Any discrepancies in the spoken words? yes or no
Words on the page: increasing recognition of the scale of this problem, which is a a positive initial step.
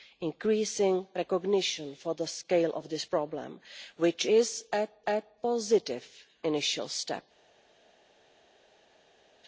no